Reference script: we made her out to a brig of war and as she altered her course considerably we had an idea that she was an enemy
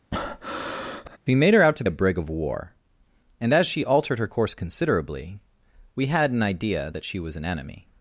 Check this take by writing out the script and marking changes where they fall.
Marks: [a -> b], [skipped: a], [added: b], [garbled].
we made her out to a brig of war and as she altered her course considerably we had an idea that she was an enemy